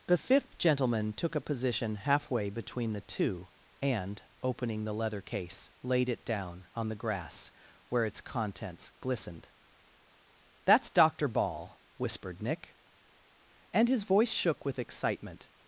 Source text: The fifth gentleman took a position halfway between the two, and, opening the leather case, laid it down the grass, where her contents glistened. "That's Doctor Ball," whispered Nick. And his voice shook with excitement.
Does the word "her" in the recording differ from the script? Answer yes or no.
yes